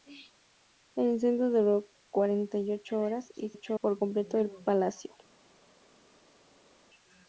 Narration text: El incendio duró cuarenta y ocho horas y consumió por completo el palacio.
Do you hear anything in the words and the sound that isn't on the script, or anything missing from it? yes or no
yes